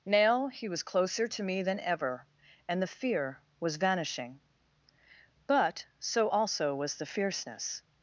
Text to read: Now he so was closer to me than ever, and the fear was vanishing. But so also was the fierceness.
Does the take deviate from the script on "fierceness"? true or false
false